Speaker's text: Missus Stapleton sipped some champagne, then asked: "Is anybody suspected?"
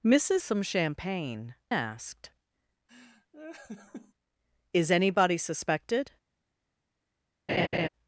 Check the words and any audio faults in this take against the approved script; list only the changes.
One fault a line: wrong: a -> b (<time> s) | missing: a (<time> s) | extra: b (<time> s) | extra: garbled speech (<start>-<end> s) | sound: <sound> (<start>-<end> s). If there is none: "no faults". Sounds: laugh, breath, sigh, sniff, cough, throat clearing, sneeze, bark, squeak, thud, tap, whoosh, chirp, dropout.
missing: Stapleton sipped (0.4 s)
missing: then (1.6 s)
sound: laugh (2.9-4.1 s)
sound: laugh (7.5-7.9 s)